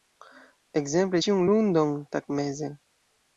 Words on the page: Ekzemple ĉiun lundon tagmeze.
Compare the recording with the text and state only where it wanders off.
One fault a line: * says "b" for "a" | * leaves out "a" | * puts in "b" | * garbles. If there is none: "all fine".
all fine